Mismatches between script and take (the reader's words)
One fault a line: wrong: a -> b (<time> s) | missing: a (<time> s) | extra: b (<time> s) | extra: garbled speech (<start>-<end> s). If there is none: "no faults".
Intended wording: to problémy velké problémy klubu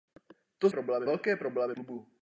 no faults